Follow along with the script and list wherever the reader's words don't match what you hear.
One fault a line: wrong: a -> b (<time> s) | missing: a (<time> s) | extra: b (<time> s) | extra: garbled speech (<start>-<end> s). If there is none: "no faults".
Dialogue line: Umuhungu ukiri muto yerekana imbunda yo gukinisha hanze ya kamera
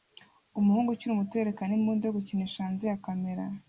no faults